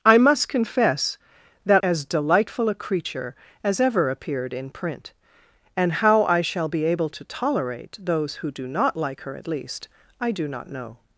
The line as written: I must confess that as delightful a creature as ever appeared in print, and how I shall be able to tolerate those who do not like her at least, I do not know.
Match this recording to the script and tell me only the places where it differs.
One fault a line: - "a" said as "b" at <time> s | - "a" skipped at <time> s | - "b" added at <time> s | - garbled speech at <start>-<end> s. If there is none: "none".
none